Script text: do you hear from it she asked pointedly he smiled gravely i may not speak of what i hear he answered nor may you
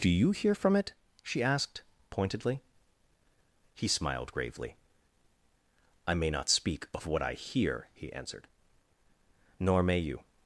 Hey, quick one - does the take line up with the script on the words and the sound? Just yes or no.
yes